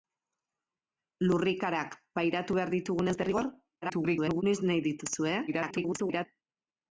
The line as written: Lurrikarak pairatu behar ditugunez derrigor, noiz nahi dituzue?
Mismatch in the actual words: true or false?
true